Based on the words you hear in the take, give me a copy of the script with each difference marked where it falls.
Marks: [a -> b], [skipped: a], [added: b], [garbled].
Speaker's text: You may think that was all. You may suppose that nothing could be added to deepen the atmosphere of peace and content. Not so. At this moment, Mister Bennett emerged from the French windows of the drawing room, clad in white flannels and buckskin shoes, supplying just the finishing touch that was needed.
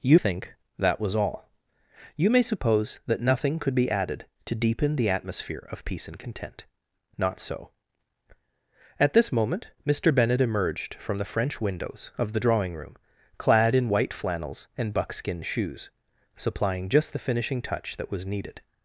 You [skipped: may] think that was all. You may suppose that nothing could be added to deepen the atmosphere of peace and content. Not so. At this moment, Mister Bennett emerged from the French windows of the drawing room, clad in white flannels and buckskin shoes, supplying just the finishing touch that was needed.